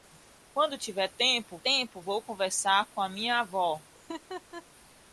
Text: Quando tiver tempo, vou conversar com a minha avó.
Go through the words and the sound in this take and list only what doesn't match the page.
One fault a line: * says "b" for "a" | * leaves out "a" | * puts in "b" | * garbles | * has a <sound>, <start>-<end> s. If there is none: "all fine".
* puts in "tempo"
* has a laugh, 3.9-4.6 s